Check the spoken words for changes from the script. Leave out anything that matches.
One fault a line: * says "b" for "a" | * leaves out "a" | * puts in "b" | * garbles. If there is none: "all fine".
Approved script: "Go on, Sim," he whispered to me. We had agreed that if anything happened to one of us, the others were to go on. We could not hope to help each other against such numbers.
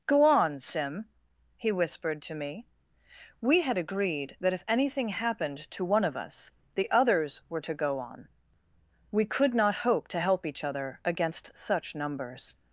all fine